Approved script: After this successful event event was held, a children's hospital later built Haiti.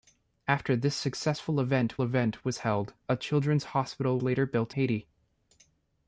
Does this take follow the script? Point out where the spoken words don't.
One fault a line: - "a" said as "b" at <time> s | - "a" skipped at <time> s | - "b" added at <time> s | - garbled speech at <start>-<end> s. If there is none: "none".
none